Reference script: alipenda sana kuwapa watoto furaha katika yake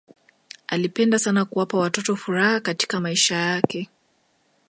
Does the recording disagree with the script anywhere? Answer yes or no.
yes